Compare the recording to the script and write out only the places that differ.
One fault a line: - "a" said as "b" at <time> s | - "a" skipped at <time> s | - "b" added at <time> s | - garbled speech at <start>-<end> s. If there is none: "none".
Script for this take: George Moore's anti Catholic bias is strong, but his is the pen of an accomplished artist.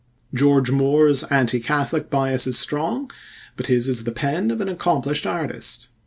none